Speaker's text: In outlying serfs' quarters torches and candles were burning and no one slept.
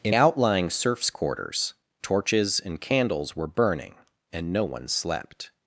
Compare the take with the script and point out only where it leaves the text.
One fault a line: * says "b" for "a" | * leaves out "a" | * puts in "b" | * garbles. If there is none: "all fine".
all fine